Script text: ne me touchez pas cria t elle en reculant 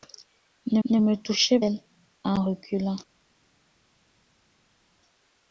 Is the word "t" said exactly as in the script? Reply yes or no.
no